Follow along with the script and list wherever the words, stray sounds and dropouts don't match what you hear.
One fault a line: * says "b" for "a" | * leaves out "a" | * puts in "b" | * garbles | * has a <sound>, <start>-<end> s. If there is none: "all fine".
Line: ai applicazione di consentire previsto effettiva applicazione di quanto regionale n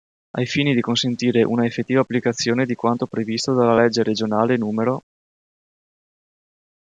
* says "fini" for "applicazione"
* says "una" for "previsto"
* puts in "previsto dalla legge"